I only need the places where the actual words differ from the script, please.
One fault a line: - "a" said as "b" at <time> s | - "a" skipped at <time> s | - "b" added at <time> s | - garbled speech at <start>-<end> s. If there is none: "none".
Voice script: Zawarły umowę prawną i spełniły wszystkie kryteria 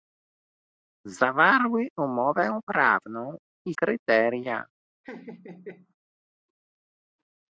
- "spełniły wszystkie" skipped at 3.7 s